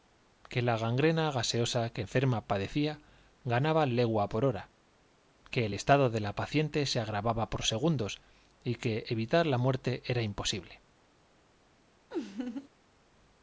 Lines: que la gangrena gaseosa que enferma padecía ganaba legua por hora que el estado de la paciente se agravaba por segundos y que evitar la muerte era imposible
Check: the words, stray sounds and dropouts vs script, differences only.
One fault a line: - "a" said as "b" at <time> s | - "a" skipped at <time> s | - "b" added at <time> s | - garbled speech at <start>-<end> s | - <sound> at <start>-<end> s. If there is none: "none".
- laugh at 12.1-12.7 s